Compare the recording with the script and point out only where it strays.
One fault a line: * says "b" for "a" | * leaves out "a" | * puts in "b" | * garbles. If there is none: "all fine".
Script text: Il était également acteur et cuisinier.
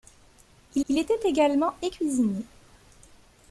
* puts in "il"
* leaves out "acteur"